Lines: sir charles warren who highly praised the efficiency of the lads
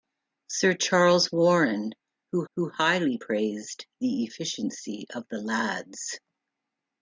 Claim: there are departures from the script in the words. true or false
true